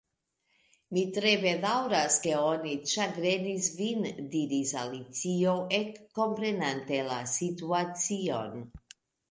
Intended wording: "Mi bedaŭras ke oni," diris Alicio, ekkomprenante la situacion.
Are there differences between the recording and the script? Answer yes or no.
yes